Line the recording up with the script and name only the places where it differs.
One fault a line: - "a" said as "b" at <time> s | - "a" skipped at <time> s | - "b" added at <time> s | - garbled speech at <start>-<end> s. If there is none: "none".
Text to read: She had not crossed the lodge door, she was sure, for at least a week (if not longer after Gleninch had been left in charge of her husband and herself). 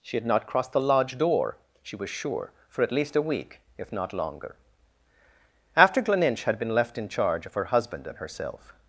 none